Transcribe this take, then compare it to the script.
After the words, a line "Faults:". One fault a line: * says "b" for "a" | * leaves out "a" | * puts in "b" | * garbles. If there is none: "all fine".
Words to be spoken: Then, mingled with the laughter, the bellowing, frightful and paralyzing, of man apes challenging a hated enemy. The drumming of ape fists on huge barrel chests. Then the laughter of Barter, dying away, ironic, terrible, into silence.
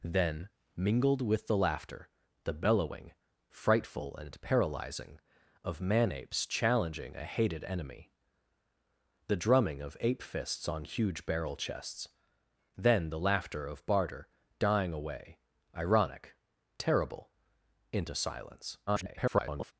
Then, mingled with the laughter, the bellowing, frightful and paralyzing, of man apes challenging a hated enemy. The drumming of ape fists on huge barrel chests. Then the laughter of Barter, dying away, ironic, terrible, into silence. [garbled]
Faults:
* garbles